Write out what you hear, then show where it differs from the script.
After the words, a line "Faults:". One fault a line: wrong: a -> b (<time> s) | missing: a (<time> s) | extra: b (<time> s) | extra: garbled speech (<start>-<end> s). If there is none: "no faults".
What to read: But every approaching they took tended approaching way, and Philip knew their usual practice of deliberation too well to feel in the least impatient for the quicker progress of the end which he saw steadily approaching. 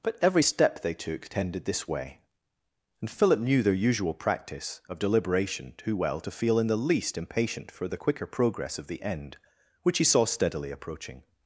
But every step they took tended this way, and Philip knew their usual practice of deliberation too well to feel in the least impatient for the quicker progress of the end which he saw steadily approaching.
Faults:
wrong: approaching -> step (0.4 s)
wrong: approaching -> this (1.6 s)